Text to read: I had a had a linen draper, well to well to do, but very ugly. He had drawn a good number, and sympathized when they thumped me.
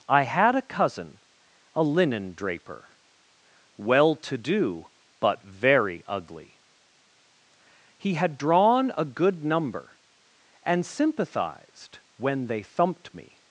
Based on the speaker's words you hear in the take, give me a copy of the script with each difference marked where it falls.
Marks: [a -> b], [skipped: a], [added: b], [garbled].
I had a [had -> cousin] a linen draper, well to [skipped: well to] do, but very ugly. He had drawn a good number, and sympathized when they thumped me.